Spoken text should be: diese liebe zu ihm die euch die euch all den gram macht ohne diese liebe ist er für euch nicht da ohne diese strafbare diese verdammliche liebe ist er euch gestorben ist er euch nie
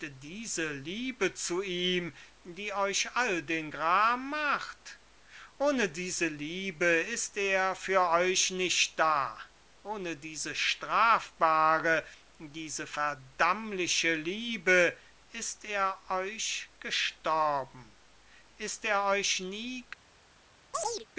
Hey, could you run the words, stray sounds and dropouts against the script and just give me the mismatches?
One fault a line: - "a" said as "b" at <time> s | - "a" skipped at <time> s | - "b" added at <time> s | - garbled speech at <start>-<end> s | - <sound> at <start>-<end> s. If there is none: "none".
- "die euch" skipped at 3.1 s
- chirp at 20.7-21.1 s